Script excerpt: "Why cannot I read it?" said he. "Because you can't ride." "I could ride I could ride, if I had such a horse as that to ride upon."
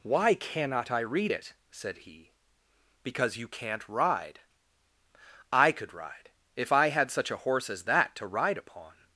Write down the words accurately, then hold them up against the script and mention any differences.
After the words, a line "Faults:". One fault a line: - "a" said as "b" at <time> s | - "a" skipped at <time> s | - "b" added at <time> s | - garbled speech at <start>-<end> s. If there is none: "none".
"Why cannot I read it?" said he. "Because you can't ride." "I could ride, if I had such a horse as that to ride upon."
Faults:
- "I could ride" skipped at 6.3 s